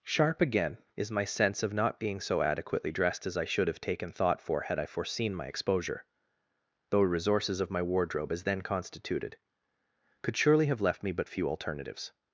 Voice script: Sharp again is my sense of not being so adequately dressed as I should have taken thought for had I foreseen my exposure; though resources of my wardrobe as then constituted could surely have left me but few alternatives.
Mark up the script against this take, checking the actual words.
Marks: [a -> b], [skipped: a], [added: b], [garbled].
Sharp again is my sense of not being so adequately dressed as I should have taken thought for had I foreseen my exposure; though resources of my wardrobe as then constituted could surely have left me but few alternatives.